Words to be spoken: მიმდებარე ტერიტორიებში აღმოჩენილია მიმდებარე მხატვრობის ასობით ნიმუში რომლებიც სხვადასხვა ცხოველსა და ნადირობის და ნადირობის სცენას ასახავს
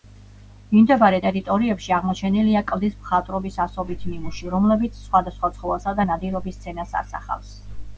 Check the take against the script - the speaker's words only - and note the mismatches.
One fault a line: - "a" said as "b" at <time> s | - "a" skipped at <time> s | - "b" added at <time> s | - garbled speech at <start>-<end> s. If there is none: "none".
- "მიმდებარე" said as "კლდის" at 2.7 s
- "და ნადირობის" skipped at 6.6 s